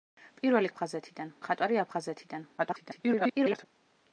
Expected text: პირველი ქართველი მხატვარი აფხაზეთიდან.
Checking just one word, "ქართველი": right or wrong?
wrong